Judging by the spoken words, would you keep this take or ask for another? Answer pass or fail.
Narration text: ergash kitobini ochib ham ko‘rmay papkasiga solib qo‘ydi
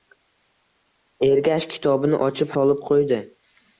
fail